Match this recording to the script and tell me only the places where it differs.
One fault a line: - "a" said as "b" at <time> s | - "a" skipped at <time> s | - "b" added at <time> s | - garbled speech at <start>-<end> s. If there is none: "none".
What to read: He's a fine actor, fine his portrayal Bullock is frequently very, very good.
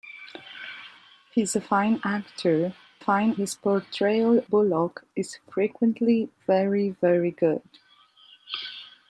none